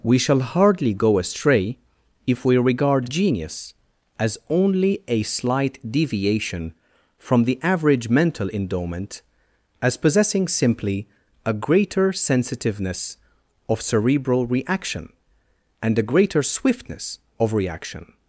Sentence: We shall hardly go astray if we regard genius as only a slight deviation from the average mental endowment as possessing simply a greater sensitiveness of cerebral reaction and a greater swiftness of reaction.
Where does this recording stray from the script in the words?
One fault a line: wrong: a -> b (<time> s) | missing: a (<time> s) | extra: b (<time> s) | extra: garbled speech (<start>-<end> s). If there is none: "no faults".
no faults